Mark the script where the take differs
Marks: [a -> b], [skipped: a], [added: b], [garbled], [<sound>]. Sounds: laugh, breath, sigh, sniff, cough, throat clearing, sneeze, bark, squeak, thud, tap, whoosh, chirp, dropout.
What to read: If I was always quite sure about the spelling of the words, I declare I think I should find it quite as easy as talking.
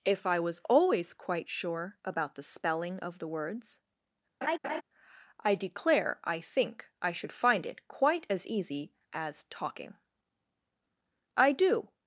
If I was always quite sure about the spelling of the words, [laugh] I declare I think I should find it quite as easy as talking. [added: I do]